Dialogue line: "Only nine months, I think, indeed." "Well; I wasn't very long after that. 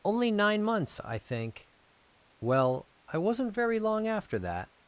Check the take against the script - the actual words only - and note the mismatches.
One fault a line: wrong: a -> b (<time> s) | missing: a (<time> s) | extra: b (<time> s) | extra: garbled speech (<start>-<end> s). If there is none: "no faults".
missing: indeed (1.7 s)